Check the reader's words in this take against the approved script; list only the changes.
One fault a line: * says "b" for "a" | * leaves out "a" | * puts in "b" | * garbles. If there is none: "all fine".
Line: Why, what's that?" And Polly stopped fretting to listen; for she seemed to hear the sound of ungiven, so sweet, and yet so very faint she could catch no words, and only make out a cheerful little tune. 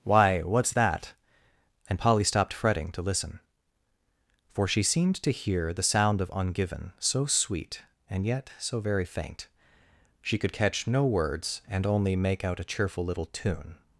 all fine